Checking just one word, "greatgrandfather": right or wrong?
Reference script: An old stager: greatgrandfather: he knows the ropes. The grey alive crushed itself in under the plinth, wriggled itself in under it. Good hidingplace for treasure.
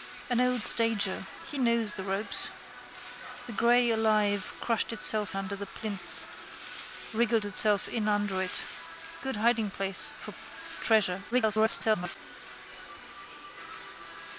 wrong